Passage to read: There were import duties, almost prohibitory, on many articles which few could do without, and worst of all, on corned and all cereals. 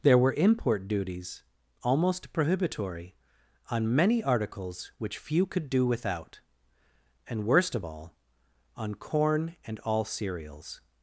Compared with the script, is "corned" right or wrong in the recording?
wrong